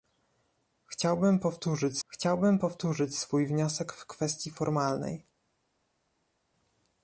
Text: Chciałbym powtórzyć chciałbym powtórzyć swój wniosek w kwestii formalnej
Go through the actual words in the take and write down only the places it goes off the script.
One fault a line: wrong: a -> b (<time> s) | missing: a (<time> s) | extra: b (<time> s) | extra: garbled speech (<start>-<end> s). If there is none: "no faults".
no faults